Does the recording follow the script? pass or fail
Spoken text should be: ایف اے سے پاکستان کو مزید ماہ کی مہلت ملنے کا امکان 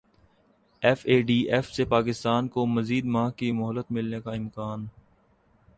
fail